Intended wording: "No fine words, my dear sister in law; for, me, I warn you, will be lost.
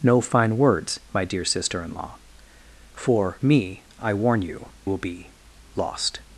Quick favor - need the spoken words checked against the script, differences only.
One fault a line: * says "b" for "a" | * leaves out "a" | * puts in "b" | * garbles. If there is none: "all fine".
all fine